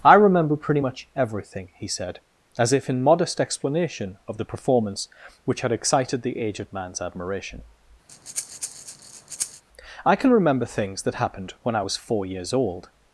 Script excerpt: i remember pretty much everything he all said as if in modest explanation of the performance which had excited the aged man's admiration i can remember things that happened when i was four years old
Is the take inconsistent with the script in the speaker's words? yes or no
yes